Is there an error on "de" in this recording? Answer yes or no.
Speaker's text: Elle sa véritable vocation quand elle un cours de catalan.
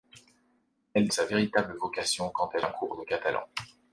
no